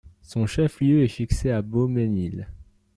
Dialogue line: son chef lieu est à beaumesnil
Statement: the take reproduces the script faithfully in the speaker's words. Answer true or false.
false